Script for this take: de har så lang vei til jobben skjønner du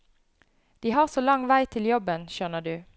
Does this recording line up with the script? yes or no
yes